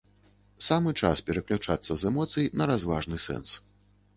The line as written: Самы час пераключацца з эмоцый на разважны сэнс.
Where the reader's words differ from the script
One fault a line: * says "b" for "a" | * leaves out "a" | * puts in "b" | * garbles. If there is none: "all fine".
all fine